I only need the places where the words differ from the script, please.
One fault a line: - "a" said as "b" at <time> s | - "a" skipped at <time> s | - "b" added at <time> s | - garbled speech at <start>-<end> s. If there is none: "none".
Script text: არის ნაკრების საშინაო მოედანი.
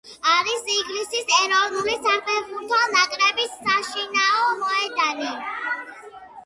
- "ინგლისის ეროვნული საფეხბურთო" added at 0.8 s